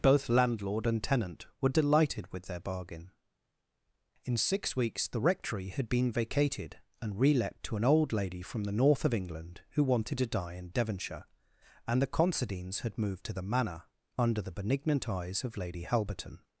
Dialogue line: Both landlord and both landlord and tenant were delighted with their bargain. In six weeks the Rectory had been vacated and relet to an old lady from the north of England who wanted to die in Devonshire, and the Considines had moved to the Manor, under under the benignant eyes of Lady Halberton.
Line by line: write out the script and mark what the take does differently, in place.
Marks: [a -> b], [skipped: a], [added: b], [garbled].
Both landlord and [skipped: both landlord and] tenant were delighted with their bargain. In six weeks the Rectory had been vacated and relet to an old lady from the north of England who wanted to die in Devonshire, and the Considines had moved to the Manor, under [skipped: under] the benignant eyes of Lady Halberton.